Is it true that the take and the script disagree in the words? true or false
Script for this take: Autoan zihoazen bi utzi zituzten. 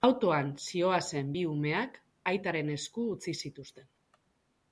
true